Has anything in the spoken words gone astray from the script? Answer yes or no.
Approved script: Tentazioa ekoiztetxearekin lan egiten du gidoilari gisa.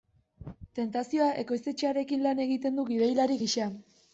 no